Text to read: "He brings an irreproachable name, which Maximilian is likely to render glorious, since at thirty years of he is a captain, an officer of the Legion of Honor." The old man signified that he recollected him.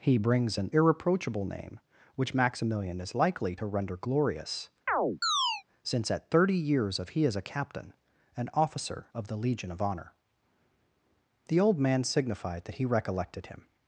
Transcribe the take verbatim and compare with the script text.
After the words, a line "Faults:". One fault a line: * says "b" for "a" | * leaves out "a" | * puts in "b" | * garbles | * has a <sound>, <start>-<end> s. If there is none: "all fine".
"He brings an irreproachable name, which Maximilian is likely to render glorious, since at thirty years of he is a captain, an officer of the Legion of Honor." The old man signified that he recollected him.
Faults:
* has a chirp, 4.9-5.6 s